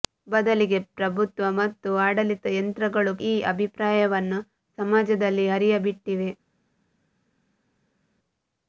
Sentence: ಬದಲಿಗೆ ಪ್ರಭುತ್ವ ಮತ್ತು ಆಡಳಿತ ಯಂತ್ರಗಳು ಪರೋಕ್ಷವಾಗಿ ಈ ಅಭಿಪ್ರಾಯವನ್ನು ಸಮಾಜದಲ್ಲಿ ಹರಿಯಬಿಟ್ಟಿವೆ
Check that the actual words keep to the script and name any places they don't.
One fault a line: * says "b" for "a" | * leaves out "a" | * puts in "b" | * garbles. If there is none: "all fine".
* leaves out "ಪರೋಕ್ಷವಾಗಿ"